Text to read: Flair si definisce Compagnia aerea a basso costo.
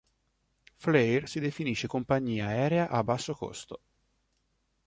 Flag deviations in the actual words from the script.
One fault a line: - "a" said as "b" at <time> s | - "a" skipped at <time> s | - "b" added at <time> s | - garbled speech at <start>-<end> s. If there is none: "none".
none